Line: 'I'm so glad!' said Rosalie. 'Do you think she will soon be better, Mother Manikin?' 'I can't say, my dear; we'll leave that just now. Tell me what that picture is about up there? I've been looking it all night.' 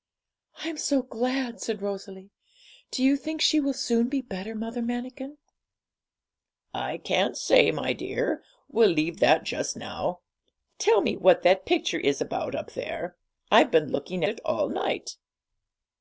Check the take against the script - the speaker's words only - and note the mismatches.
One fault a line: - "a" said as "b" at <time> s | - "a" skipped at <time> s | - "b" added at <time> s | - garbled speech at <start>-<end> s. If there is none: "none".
none